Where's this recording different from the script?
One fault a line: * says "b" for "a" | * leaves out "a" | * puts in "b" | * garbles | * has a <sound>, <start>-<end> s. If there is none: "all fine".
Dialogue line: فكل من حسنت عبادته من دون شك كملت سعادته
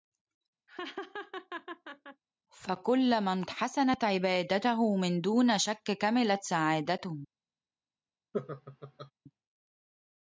* has a laugh, 0.7-2.2 s
* has a laugh, 8.3-9.1 s